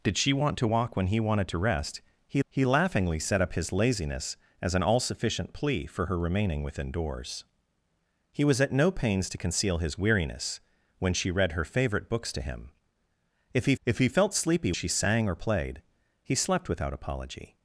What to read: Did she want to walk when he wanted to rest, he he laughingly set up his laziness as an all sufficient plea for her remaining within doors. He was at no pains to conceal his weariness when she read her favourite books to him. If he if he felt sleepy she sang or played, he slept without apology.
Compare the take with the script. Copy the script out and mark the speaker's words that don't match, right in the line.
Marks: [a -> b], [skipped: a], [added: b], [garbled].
Did she want to walk when he wanted to rest, he he laughingly set up his laziness as an all sufficient plea for her remaining within doors. He was at no pains to conceal his weariness when she read her favourite books to him. If he if he felt sleepy she sang or played, he slept without apology.